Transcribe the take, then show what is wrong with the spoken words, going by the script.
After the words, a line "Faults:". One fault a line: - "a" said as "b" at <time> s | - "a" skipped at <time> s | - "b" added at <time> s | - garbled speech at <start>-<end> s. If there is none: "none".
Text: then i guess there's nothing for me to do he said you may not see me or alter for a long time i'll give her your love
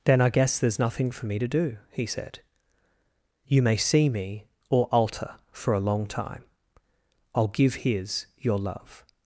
then i guess there's nothing for me to do he said you may see me or alter for a long time i'll give his your love
Faults:
- "not" skipped at 3.8 s
- "her" said as "his" at 7.8 s